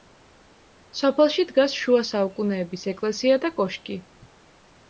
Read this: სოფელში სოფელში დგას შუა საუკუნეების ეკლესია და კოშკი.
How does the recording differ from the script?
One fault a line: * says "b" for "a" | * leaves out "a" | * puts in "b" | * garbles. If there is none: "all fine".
* leaves out "სოფელში"